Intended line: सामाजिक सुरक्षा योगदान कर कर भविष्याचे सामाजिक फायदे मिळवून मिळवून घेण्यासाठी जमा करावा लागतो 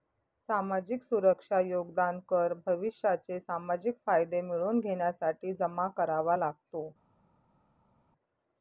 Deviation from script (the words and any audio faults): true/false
true